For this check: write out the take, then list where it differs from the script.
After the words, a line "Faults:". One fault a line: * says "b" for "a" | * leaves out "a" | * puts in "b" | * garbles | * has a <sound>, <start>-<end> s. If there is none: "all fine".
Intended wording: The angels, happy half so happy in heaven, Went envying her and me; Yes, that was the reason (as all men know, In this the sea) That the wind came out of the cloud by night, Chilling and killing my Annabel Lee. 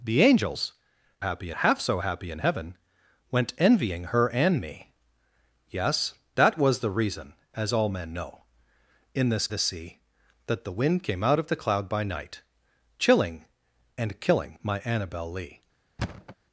The angels, happy half so happy in heaven, Went envying her and me; Yes, that was the reason (as all men know, In this the sea) That the wind came out of the cloud by night, Chilling and killing my Annabel Lee.
Faults:
* has a thud, 16.0-16.4 s